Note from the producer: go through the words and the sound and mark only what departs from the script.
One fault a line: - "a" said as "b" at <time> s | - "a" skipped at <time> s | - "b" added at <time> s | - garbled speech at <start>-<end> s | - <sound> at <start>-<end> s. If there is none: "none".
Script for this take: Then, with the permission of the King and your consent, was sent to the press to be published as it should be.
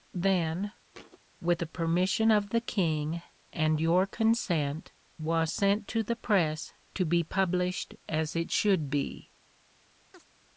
- thud at 0.9-1.2 s
- chirp at 10.1-10.3 s